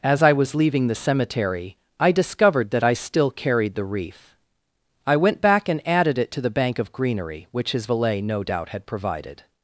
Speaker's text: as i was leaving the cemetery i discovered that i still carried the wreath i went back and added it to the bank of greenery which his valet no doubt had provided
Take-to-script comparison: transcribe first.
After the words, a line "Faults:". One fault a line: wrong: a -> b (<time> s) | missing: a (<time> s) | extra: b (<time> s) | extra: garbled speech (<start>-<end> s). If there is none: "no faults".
as i was leaving the cemetery i discovered that i still carried the wreath i went back and added it to the bank of greenery which his valet no doubt had provided
Faults:
no faults